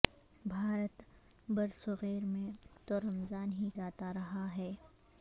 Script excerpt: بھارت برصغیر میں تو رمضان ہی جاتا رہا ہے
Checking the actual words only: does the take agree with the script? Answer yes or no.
yes